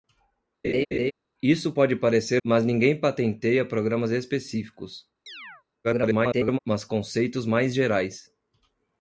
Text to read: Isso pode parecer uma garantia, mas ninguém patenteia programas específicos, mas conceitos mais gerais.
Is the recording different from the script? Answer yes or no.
yes